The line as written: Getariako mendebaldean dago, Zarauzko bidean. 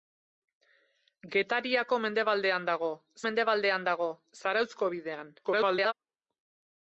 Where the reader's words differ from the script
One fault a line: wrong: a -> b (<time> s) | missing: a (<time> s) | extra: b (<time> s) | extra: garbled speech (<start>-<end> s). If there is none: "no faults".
extra: mendebaldean dago (3.3 s)
extra: garbled speech (5.4-5.9 s)